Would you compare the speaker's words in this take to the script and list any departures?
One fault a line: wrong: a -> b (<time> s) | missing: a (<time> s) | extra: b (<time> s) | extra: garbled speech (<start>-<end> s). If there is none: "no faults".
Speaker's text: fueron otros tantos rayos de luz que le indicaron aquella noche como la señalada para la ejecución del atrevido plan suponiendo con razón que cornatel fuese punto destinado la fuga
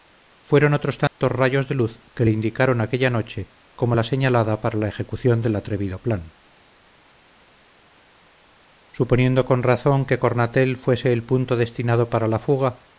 extra: el (11.1 s)
extra: para (12.1 s)